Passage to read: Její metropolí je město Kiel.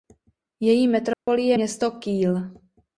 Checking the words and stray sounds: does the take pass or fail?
fail